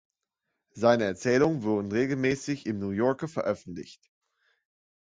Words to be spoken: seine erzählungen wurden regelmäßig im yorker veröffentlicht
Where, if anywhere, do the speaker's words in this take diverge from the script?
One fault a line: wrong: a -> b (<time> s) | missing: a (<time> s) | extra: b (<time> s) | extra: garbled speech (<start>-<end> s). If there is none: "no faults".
extra: new (2.8 s)